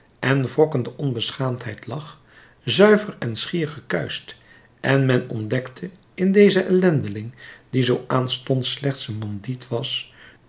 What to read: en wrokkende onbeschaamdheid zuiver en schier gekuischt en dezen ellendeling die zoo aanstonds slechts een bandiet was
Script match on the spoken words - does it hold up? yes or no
no